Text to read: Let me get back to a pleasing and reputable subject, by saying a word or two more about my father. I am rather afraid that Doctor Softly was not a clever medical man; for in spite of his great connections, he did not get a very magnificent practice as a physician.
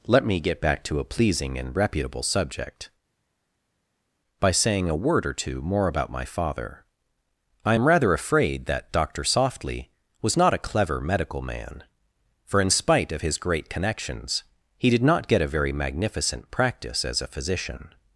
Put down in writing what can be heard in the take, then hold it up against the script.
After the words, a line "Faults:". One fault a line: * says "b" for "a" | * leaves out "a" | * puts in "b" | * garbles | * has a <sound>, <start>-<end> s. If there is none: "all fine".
Let me get back to a pleasing and reputable subject, by saying a word or two more about my father. I am rather afraid that Doctor Softly was not a clever medical man; for in spite of his great connections, he did not get a very magnificent practice as a physician.
Faults:
all fine